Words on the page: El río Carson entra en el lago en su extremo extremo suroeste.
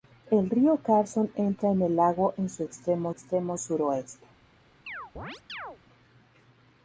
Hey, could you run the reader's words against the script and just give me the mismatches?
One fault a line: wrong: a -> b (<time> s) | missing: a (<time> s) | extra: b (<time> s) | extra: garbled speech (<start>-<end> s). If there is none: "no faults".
no faults